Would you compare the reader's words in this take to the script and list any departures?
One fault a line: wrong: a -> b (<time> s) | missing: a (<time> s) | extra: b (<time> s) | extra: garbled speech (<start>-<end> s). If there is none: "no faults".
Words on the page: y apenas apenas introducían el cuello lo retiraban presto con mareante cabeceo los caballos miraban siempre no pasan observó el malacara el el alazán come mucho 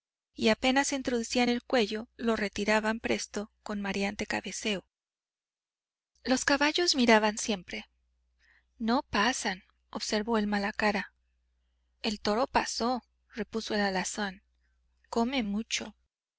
missing: apenas (0.9 s)
extra: toro pasó repuso (12.2 s)